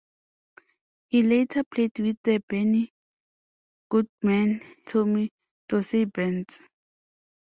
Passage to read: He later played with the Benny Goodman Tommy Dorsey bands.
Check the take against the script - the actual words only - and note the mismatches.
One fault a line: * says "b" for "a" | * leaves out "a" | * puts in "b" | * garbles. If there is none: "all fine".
all fine